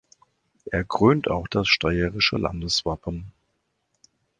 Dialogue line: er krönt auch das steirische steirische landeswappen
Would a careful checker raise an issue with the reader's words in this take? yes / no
yes